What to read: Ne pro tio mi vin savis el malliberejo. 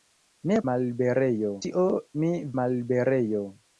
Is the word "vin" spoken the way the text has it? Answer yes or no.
no